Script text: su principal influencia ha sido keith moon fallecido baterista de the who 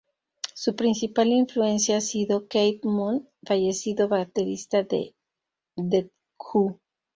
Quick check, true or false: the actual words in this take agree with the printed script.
true